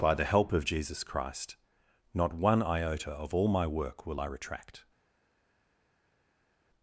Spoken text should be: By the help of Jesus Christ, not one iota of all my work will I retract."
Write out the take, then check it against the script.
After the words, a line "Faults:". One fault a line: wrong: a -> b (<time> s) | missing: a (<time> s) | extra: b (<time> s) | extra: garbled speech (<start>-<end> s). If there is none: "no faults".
By the help of Jesus Christ, not one iota of all my work will I retract."
Faults:
no faults